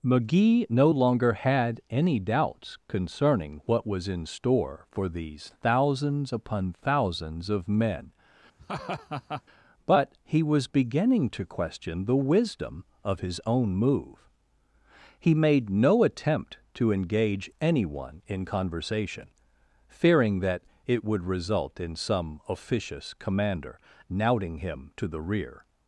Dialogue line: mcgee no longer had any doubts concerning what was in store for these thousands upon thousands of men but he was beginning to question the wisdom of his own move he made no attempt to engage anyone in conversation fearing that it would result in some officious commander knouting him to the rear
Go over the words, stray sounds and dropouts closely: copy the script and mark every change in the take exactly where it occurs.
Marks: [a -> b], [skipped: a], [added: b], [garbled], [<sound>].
mcgee no longer had any doubts concerning what was in store for these thousands upon thousands of men [laugh] but he was beginning to question the wisdom of his own move he made no attempt to engage anyone in conversation fearing that it would result in some officious commander knouting him to the rear